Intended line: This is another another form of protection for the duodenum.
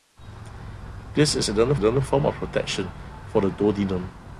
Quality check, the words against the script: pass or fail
pass